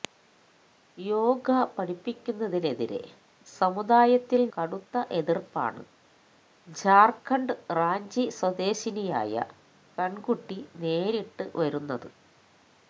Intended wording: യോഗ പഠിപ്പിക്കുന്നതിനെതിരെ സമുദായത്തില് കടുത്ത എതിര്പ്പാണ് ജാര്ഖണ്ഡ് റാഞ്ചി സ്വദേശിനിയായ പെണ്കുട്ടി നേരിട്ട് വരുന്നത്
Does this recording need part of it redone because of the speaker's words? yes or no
no